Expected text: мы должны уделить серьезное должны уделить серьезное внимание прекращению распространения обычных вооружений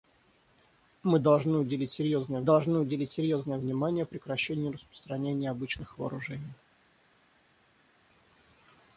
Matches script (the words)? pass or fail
pass